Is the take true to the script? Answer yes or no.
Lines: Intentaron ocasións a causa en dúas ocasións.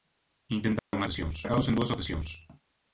yes